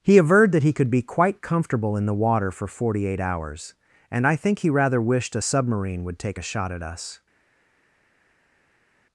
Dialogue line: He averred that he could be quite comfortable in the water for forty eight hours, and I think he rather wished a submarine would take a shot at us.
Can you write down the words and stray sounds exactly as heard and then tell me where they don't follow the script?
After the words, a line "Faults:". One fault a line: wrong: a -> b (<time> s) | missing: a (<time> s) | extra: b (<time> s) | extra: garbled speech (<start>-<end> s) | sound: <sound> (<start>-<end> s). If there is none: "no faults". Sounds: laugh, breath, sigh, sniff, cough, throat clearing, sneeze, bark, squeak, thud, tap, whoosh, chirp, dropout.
He averred that he could be quite comfortable in the water for forty eight hours, and I think he rather wished a submarine would take a shot at us.
Faults:
no faults